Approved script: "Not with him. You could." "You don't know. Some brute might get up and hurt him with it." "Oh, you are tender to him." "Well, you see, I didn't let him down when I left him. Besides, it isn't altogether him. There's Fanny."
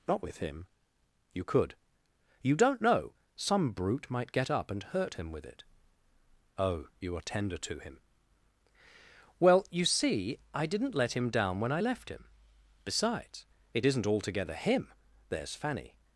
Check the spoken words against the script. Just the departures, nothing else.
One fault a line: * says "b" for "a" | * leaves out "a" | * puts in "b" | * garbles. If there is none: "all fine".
all fine